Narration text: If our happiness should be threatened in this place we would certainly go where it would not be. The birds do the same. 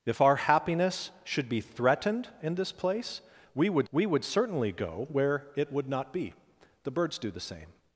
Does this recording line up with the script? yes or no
no